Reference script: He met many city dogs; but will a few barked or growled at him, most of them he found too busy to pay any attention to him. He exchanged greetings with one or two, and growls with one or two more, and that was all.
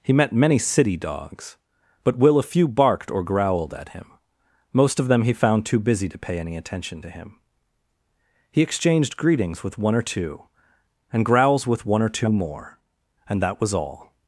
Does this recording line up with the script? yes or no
yes